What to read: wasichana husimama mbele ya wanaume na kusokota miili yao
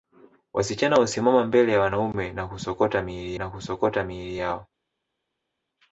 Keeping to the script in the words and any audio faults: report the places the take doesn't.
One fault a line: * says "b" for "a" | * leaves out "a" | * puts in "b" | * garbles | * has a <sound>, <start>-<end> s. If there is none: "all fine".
* puts in "na kusokota miili"